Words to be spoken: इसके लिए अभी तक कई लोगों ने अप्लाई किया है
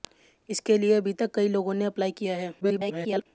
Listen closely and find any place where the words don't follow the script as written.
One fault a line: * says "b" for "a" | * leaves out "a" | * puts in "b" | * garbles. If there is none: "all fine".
* garbles